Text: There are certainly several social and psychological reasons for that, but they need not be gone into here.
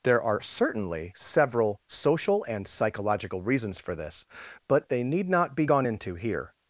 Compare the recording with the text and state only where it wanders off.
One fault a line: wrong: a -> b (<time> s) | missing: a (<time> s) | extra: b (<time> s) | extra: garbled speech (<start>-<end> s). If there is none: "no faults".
wrong: that -> this (4.0 s)